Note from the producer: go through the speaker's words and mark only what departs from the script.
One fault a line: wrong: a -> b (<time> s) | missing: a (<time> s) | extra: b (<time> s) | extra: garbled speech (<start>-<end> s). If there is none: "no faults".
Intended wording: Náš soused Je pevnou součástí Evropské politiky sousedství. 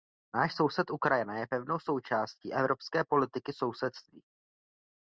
extra: Ukrajina (0.9 s)